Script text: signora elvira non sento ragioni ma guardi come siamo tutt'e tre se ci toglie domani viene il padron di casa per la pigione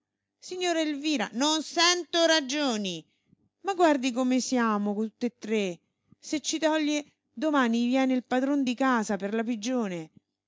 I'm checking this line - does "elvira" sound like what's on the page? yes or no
yes